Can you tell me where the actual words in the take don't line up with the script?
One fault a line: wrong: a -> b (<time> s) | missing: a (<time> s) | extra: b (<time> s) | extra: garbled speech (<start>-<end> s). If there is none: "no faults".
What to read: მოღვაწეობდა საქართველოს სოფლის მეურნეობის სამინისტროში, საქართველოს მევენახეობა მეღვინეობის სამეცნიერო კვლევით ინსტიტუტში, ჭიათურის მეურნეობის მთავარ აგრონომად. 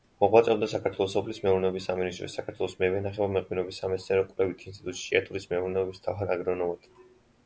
no faults